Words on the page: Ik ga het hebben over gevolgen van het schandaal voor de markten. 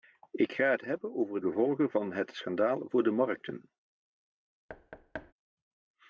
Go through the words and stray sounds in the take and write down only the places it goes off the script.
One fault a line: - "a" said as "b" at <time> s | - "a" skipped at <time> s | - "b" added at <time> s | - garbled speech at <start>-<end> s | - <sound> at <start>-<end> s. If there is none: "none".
- thud at 4.7-5.3 s